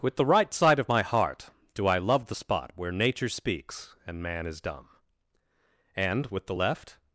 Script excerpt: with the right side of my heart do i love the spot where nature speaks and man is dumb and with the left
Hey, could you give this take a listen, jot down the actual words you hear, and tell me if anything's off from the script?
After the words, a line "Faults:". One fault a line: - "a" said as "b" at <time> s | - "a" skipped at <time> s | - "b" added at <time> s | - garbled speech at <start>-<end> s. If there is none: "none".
with the right side of my heart do i love the spot where nature speaks and man is dumb and with the left
Faults:
none